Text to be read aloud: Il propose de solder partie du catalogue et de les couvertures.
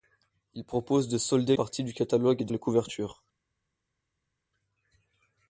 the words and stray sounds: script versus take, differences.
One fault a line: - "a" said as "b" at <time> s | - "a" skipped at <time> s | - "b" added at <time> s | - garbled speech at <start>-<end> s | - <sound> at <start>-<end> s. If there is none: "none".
none